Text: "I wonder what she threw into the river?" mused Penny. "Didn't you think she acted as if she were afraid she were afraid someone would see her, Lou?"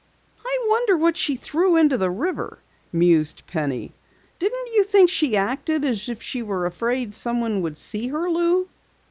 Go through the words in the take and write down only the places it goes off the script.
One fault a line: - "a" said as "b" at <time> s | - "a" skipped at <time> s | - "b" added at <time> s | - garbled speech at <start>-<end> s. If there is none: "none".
- "she were afraid" skipped at 7.1 s